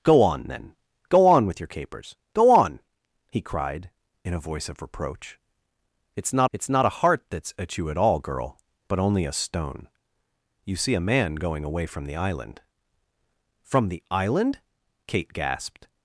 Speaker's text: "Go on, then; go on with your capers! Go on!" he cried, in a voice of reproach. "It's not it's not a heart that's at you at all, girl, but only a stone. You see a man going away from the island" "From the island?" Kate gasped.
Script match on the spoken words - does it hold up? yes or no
yes